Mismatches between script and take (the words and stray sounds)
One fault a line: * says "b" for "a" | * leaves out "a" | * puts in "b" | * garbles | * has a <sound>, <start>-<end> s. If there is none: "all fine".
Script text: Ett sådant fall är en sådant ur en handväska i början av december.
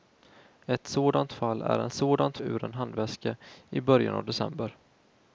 all fine